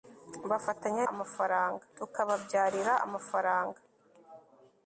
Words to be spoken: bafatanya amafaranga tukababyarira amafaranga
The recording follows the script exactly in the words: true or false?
true